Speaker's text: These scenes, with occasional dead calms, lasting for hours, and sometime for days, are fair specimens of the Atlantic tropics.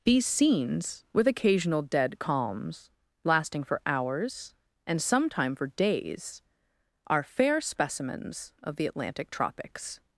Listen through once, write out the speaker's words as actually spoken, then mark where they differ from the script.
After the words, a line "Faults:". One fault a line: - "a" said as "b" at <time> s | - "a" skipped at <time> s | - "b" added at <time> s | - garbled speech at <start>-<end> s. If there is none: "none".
These scenes, with occasional dead calms, lasting for hours, and sometime for days, are fair specimens of the Atlantic tropics.
Faults:
none